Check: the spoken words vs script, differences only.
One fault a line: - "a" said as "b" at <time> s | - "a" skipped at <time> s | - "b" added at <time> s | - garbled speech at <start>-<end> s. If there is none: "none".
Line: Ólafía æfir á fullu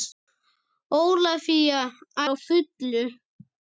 - "æfir" skipped at 1.8 s